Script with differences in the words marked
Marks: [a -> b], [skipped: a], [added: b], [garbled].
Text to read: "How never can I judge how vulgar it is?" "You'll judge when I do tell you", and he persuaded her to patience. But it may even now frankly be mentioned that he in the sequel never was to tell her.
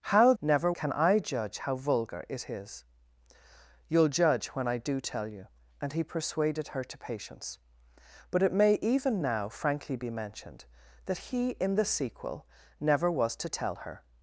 "How never can I judge how vulgar it is?" "You'll judge when I do tell you", and he persuaded her to patience. But it may even now frankly be mentioned that he in the sequel never was to tell her.